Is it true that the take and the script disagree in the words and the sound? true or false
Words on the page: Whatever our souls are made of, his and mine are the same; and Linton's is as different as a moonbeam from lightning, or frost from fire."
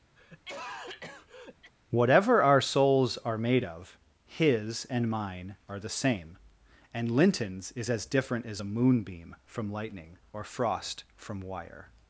true